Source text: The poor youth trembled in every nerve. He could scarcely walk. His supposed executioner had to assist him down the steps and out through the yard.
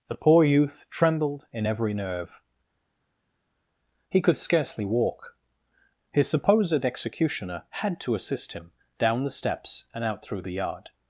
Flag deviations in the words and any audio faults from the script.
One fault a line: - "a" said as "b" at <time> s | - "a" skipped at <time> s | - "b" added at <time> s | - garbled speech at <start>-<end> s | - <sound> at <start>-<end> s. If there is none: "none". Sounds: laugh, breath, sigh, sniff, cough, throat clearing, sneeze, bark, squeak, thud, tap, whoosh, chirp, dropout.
none